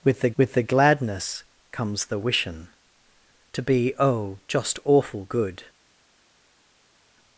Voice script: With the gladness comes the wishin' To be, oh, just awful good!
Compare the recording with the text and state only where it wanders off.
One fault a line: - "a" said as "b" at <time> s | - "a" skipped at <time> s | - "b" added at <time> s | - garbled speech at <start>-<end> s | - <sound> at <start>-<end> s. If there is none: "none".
- "with the" added at 0.4 s